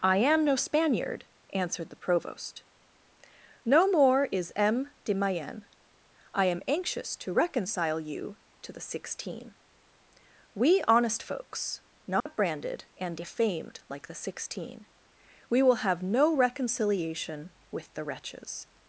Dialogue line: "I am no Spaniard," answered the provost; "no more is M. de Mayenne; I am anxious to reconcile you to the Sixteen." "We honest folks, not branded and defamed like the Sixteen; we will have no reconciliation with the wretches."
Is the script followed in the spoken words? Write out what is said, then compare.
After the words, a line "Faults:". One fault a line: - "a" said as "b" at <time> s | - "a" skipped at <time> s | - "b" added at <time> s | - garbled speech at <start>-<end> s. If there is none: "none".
"I am no Spaniard," answered the provost; "no more is M. de Mayenne; I am anxious to reconcile you to the Sixteen." "We honest folks, not branded and defamed like the Sixteen; we will have no reconciliation with the wretches."
Faults:
none